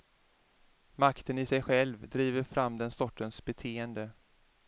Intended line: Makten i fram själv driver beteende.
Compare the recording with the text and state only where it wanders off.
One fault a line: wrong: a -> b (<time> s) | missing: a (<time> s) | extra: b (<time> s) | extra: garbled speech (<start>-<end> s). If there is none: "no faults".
wrong: fram -> sig (1.4 s)
extra: fram den sortens (2.4 s)